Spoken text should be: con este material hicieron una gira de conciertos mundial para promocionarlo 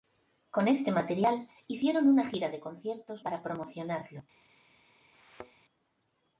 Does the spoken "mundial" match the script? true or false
false